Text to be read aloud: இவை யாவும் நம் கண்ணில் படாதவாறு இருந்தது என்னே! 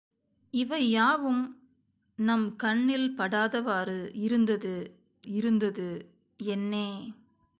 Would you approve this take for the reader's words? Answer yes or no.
no